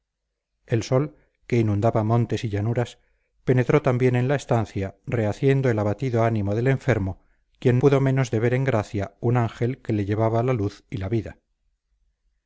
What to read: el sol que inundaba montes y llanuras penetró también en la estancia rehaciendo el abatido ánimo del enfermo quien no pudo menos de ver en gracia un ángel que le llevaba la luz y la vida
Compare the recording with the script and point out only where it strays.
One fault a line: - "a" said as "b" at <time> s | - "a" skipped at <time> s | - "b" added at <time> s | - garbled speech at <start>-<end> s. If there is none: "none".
- "no" skipped at 7.8 s